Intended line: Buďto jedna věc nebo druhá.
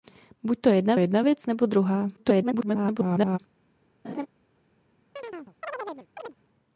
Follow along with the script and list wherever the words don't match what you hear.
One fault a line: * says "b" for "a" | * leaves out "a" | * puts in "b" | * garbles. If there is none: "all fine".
* puts in "jedna"
* garbles